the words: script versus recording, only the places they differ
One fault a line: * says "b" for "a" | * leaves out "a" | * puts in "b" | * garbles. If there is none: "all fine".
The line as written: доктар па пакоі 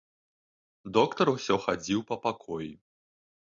* puts in "усё хадзіў"